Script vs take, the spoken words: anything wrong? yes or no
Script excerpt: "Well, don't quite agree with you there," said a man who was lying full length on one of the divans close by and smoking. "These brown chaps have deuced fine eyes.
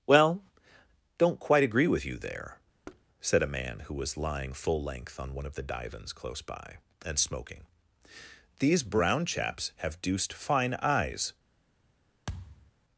no